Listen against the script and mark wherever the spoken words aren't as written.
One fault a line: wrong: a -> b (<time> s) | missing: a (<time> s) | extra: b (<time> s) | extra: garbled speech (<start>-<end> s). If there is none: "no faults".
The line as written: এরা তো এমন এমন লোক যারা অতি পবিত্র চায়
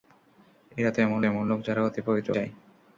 no faults